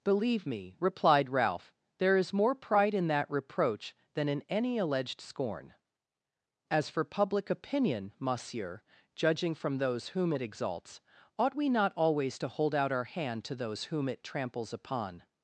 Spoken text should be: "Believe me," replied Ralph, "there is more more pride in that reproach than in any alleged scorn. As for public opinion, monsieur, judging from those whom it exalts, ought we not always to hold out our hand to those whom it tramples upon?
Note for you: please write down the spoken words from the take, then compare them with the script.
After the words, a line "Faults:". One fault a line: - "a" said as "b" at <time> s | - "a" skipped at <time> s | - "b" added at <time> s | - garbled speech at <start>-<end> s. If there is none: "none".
"Believe me," replied Ralph, "there is more pride in that reproach than in any alleged scorn. As for public opinion, monsieur, judging from those whom it exalts, ought we not always to hold out our hand to those whom it tramples upon?
Faults:
- "more" skipped at 2.5 s